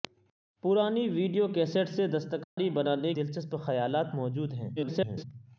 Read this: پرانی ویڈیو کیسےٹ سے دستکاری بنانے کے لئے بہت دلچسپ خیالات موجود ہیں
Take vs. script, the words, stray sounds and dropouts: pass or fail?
fail